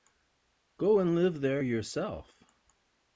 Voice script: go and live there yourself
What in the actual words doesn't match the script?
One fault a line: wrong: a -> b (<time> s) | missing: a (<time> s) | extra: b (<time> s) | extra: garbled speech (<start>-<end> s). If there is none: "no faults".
no faults